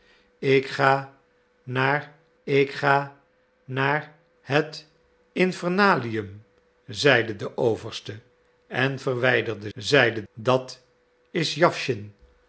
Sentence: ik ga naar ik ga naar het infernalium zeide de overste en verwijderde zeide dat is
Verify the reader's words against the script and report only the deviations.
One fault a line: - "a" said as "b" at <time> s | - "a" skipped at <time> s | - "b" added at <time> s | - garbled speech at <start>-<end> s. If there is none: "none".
none